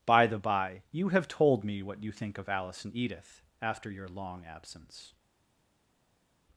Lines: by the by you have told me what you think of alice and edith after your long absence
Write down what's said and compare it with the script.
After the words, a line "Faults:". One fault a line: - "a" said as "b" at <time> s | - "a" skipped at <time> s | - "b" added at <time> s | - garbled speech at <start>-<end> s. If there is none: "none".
by the by you have told me what you think of alice and edith after your long absence
Faults:
none